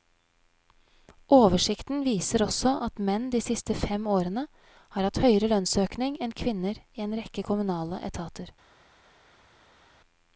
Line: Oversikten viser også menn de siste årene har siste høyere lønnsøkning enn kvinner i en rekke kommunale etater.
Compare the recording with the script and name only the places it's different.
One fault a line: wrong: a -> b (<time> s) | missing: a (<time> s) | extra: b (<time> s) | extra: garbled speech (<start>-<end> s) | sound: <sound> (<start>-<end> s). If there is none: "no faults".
extra: at (2.9 s)
extra: fem (3.8 s)
wrong: siste -> hatt (5.1 s)